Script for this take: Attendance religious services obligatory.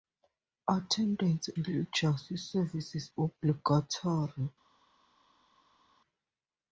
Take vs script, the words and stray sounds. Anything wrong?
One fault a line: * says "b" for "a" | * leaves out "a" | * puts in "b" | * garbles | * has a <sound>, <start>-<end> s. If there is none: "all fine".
all fine